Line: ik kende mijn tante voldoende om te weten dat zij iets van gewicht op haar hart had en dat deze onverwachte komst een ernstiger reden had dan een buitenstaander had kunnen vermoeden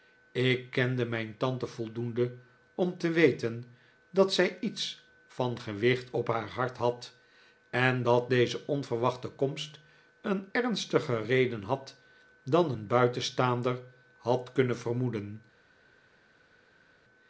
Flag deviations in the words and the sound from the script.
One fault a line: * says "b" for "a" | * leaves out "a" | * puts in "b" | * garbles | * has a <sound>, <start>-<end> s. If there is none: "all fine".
all fine